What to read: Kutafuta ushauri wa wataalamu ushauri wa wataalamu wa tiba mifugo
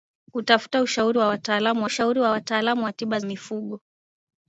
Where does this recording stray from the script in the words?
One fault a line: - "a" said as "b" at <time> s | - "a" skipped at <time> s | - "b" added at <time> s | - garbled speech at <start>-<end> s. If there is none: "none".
none